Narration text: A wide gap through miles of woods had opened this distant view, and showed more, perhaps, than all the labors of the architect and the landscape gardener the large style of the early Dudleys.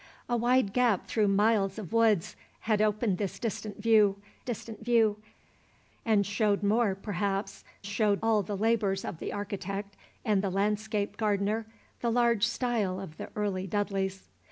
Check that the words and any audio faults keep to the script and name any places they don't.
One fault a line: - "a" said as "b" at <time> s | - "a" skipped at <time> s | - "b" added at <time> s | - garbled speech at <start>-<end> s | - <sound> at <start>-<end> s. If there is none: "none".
- "distant view" added at 4.4 s
- "than" said as "showed" at 7.8 s